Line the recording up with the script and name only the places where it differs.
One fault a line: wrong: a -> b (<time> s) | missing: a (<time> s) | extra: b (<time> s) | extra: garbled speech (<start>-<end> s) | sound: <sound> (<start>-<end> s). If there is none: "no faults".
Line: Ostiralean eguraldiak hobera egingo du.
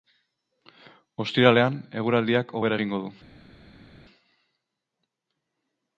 no faults